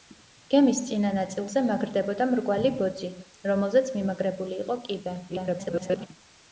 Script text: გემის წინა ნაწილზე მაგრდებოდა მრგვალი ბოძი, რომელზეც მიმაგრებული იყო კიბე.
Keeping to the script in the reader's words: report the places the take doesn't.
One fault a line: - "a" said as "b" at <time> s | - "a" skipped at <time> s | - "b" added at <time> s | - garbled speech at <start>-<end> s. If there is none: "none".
- garbled speech at 5.3-6.1 s